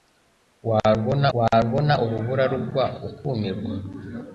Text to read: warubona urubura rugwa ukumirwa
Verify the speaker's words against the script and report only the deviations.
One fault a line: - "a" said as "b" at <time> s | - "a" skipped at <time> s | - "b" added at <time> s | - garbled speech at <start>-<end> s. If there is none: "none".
- "warubona" added at 1.4 s